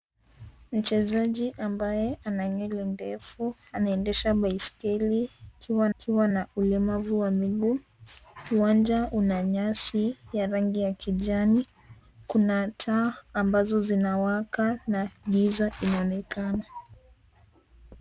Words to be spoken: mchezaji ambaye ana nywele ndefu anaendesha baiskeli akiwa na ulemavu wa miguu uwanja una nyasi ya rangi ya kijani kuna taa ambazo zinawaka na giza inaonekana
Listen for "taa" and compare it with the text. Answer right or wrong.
right